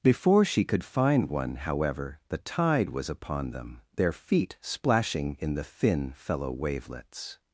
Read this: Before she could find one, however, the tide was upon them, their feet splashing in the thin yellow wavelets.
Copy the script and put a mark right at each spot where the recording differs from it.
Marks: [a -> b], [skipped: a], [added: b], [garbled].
Before she could find one, however, the tide was upon them, their feet splashing in the thin [yellow -> fellow] wavelets.